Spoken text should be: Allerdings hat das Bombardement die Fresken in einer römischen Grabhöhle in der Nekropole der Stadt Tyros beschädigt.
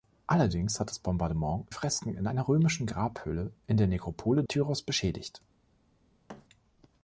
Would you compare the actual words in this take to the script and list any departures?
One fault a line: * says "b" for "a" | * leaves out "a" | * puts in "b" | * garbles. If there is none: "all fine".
* leaves out "die"
* leaves out "der Stadt"